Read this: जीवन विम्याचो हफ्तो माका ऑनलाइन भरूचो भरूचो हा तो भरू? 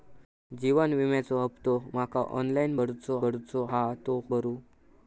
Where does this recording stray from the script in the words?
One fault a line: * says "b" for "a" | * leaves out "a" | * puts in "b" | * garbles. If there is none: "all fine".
all fine